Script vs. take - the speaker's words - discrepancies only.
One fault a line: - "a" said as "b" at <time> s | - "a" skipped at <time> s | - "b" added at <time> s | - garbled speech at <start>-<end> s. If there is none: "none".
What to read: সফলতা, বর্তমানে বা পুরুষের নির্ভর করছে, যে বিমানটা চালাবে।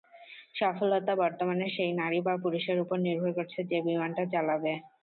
- "সেই নারী" added at 1.8 s
- "ওপর" added at 2.8 s